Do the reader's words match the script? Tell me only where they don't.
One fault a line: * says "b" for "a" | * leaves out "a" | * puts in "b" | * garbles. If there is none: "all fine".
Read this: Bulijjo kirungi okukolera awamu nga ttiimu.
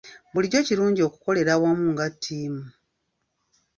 all fine